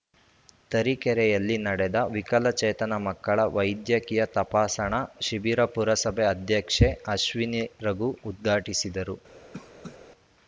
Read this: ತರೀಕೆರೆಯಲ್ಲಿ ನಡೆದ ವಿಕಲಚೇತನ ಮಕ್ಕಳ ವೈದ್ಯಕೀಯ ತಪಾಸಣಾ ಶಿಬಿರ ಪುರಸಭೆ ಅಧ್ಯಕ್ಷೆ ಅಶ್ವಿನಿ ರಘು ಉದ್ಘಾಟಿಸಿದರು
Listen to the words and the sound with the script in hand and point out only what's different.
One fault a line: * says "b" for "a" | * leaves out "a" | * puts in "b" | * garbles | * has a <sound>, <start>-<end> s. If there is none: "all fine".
* has a cough, 9.5-10.0 s